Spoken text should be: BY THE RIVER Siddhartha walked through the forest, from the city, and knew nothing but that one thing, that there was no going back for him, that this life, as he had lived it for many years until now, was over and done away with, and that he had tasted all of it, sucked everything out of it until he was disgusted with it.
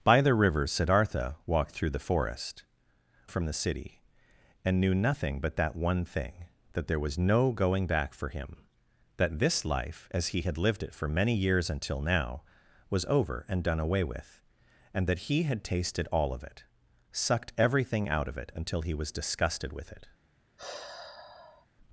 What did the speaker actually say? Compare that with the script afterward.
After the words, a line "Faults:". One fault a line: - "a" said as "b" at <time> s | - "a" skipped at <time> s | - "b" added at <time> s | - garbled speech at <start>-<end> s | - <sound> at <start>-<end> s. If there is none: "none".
BY THE RIVER Siddhartha walked through the forest, from the city, and knew nothing but that one thing, that there was no going back for him, that this life, as he had lived it for many years until now, was over and done away with, and that he had tasted all of it, sucked everything out of it until he was disgusted with it.
Faults:
- sigh at 20.6-21.7 s